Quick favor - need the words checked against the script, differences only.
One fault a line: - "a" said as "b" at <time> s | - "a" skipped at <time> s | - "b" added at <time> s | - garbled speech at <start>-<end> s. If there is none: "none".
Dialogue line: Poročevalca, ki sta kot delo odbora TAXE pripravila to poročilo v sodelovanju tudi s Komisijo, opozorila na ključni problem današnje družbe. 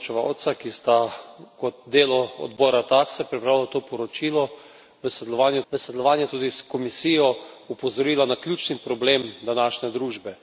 - "v sodelovanju" added at 5.7 s